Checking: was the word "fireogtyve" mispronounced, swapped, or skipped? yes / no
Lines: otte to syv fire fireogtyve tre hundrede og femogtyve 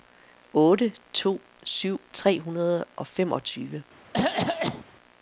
yes